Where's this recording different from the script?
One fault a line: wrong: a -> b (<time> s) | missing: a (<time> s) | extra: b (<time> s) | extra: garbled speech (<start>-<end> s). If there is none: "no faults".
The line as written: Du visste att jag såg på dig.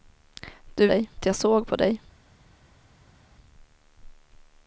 wrong: visste -> dig (0.8 s)